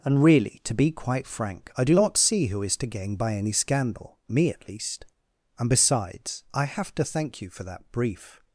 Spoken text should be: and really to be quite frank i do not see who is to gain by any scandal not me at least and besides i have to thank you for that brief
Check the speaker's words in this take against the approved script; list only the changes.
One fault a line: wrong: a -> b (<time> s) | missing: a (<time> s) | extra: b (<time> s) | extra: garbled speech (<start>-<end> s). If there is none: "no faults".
missing: not (4.2 s)